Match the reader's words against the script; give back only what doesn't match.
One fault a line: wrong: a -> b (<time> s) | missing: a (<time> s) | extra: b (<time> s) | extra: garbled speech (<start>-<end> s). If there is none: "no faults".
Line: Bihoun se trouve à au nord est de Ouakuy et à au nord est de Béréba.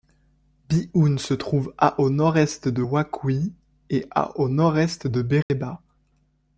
no faults